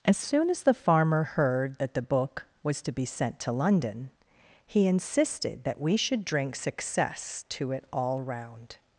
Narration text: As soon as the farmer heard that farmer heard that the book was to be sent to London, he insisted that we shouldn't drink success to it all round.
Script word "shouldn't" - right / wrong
wrong